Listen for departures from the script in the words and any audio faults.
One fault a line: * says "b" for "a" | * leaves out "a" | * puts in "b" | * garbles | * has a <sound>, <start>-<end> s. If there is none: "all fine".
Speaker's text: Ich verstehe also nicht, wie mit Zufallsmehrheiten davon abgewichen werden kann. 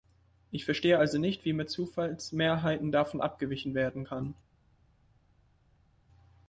all fine